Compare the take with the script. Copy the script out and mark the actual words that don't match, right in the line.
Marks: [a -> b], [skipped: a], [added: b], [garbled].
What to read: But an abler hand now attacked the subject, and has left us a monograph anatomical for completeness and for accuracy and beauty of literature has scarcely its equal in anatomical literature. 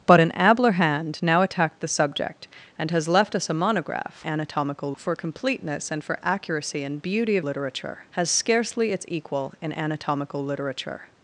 But an abler hand now attacked the subject, and has left us a monograph anatomical for completeness and for accuracy and beauty of literature has scarcely its equal in anatomical literature.